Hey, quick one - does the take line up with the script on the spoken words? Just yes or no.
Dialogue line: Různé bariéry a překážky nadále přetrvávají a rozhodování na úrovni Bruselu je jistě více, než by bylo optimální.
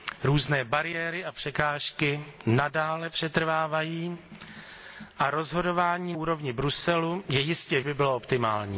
no